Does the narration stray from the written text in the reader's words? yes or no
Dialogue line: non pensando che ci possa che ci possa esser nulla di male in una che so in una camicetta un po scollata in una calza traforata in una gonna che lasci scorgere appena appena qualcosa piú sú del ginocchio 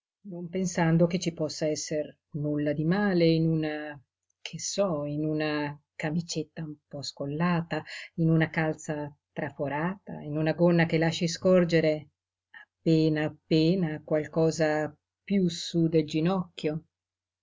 yes